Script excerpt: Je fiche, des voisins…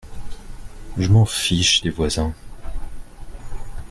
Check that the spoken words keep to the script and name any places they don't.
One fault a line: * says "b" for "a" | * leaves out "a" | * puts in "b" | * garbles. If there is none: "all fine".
* puts in "m'en"